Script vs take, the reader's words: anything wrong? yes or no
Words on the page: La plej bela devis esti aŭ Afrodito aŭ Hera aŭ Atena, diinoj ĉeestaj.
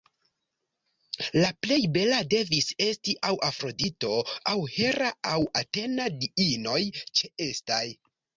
no